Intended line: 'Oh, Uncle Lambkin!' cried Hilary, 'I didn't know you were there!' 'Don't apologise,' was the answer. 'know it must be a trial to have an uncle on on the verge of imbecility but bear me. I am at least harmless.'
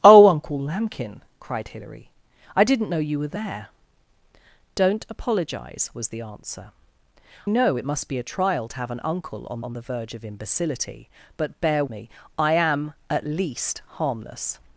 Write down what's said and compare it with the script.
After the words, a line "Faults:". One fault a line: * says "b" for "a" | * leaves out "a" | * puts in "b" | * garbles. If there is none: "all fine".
'Oh, Uncle Lambkin!' cried Hilary, 'I didn't know you were there!' 'Don't apologise,' was the answer. 'know it must be a trial to have an uncle on on the verge of imbecility but bear me. I am at least harmless.'
Faults:
all fine